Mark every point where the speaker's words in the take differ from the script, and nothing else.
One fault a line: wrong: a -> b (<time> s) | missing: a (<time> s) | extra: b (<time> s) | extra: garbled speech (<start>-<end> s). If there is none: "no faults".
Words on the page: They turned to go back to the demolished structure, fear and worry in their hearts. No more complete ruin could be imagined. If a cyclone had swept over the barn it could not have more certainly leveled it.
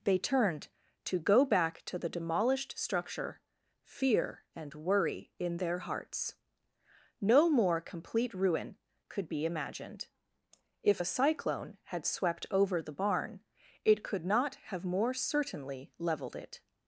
no faults